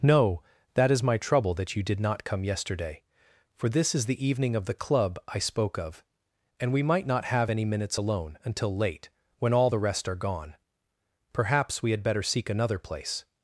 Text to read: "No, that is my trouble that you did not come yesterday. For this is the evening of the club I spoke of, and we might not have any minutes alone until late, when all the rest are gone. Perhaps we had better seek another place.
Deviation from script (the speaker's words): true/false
false